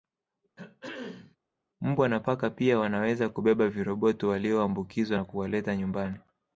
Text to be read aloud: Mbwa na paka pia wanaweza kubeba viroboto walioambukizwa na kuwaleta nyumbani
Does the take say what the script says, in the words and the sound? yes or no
no